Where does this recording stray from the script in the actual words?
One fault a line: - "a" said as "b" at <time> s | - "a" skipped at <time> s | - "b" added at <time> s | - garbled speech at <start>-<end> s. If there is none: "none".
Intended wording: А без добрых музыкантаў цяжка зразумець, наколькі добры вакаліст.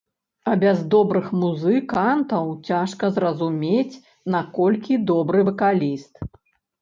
none